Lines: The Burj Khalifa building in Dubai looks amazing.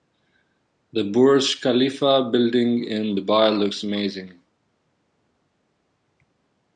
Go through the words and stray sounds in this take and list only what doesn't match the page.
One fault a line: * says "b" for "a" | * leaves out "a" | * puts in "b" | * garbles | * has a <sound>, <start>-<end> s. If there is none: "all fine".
all fine